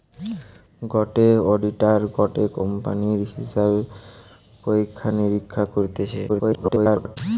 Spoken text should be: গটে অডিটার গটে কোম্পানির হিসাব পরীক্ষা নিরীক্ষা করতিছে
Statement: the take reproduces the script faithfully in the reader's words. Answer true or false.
false